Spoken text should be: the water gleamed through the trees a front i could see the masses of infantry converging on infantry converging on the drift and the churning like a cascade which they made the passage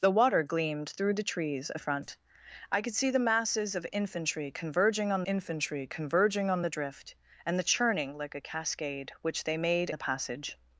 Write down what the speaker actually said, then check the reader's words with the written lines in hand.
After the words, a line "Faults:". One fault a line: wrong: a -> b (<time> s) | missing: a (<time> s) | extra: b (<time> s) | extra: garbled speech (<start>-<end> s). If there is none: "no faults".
the water gleamed through the trees a front i could see the masses of infantry converging on infantry converging on the drift and the churning like a cascade which they made the passage
Faults:
no faults